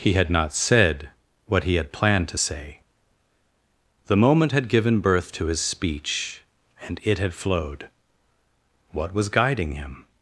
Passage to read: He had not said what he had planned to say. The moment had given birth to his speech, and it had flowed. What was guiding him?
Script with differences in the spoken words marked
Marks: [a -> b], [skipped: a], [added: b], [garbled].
He had not said what he had planned to say. The moment had given birth to his speech, and it had flowed. What was guiding him?